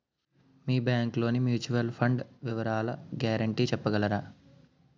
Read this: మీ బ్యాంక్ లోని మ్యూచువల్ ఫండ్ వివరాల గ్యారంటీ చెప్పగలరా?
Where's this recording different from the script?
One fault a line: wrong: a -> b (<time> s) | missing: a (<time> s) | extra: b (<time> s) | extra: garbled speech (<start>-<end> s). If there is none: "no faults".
no faults